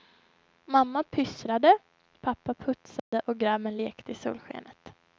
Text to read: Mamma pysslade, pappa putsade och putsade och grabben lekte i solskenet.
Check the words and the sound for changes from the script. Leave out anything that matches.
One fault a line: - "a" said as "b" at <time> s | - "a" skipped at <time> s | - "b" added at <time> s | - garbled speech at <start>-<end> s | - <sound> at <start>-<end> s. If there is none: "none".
- dropout at 3.0-3.1 s
- "putsade och" skipped at 3.4 s